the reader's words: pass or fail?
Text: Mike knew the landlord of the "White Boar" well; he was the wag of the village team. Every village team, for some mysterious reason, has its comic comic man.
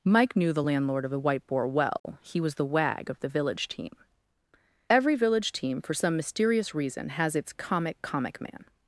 pass